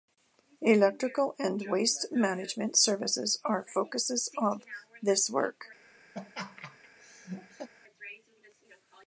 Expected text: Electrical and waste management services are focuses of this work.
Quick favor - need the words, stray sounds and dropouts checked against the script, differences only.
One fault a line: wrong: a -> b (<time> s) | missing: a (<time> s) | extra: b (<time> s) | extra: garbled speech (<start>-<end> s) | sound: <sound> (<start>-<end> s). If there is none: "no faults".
sound: laugh (6.1-7.7 s)